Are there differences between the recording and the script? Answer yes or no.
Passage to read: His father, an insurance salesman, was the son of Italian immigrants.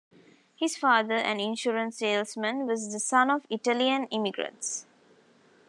no